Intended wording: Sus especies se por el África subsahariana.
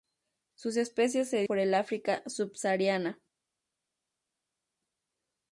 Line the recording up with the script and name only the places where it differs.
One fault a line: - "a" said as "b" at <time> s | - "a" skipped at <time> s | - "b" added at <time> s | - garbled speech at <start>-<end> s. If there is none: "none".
none